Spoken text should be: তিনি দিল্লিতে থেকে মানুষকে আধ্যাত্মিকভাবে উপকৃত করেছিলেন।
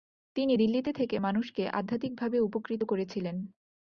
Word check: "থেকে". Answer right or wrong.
right